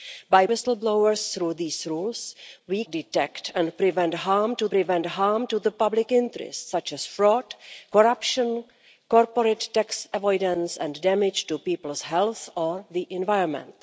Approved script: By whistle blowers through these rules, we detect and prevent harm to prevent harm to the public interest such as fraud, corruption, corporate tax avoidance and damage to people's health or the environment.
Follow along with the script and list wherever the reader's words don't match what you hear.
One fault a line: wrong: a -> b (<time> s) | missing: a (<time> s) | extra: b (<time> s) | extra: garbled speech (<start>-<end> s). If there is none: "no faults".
no faults